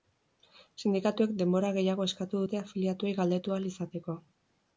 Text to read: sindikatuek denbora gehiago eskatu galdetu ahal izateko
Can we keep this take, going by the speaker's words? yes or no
no